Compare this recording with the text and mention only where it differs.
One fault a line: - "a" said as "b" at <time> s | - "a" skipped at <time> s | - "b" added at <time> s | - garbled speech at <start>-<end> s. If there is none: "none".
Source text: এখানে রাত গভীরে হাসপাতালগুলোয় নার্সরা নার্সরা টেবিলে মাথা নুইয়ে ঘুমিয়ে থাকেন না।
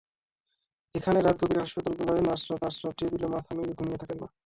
none